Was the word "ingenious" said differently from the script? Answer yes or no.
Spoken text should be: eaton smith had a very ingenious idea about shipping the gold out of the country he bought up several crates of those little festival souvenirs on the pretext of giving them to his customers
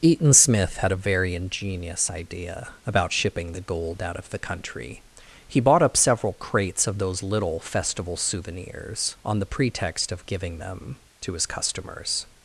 no